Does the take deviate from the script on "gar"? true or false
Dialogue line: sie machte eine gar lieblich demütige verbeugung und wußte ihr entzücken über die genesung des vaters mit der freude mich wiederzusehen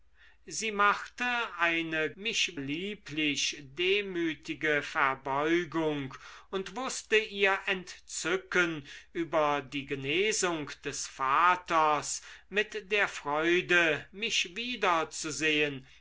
true